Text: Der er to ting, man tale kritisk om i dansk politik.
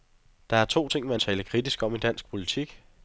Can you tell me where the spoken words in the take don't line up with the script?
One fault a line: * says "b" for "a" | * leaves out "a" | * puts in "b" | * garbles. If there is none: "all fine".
all fine